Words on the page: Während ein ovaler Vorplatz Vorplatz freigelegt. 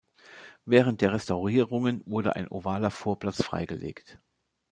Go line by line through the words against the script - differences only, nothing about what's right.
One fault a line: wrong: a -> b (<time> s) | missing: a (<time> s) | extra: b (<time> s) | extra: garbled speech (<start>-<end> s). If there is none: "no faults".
extra: der Restaurierungen wurde (1.0 s)
missing: Vorplatz (3.4 s)